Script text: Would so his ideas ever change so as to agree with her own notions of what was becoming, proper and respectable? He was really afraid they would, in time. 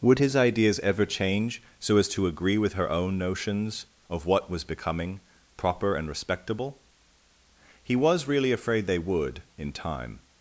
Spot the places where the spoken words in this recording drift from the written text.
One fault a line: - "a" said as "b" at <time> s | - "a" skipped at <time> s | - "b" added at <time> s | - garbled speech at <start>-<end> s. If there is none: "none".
- "so" skipped at 0.2 s